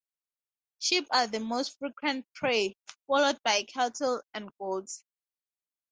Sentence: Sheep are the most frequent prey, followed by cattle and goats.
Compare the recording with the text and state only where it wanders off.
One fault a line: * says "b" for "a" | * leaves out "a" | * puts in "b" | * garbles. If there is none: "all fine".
all fine